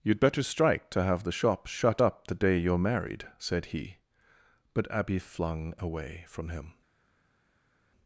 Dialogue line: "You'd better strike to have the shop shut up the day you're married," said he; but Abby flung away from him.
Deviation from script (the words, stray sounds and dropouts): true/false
false